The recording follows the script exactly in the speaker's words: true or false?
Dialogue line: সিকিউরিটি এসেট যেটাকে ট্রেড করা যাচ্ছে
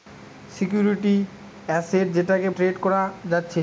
true